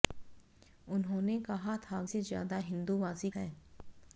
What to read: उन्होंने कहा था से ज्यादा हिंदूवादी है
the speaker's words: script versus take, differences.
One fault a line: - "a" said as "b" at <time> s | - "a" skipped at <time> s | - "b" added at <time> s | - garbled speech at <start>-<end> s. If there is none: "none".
none